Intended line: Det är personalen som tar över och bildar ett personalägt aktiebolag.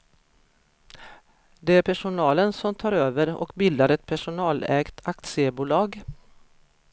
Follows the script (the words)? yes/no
yes